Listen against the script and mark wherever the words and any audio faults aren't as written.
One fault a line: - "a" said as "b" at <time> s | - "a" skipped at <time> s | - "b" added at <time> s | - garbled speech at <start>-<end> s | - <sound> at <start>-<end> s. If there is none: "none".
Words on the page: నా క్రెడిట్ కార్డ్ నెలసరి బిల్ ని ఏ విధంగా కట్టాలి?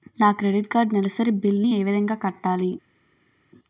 none